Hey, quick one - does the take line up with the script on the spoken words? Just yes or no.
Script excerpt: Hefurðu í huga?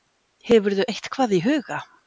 no